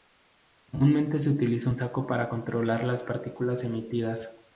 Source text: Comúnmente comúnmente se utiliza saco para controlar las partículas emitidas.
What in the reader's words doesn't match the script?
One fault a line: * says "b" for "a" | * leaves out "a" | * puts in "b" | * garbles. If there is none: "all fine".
* leaves out "comúnmente"
* puts in "un"